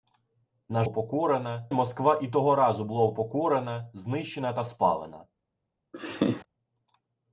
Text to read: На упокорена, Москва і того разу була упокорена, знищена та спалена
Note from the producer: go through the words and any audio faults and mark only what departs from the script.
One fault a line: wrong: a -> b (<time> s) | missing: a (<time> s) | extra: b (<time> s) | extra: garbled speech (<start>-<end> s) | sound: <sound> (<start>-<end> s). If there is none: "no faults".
sound: laugh (5.9-6.5 s)